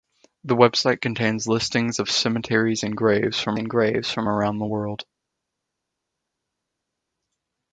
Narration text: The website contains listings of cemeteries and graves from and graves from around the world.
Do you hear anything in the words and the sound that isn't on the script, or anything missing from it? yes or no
no